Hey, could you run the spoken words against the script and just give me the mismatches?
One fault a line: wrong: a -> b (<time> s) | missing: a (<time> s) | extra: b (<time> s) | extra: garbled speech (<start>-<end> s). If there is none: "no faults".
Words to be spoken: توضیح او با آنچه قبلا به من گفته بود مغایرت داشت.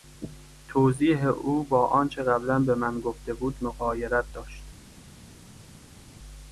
no faults